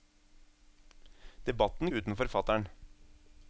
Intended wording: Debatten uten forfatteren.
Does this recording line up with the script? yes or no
yes